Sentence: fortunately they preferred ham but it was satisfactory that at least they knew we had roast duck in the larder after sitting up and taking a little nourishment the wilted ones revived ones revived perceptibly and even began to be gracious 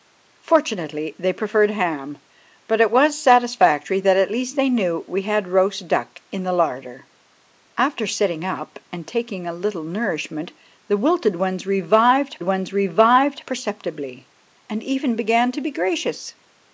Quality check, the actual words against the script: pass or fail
pass